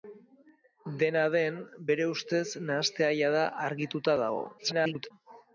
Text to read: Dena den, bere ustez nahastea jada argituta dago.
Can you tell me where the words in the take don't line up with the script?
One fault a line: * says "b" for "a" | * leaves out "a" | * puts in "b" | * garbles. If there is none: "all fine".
* garbles